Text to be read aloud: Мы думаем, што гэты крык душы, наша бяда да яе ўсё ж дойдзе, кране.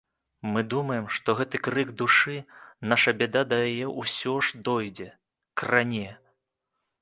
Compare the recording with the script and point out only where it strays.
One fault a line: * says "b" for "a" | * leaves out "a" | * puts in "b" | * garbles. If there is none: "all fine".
all fine